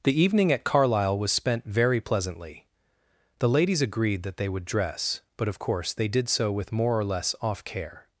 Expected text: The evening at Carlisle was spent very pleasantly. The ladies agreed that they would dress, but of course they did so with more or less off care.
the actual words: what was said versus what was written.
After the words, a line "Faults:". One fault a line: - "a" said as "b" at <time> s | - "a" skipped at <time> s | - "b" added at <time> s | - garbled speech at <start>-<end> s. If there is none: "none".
The evening at Carlisle was spent very pleasantly. The ladies agreed that they would dress, but of course they did so with more or less off care.
Faults:
none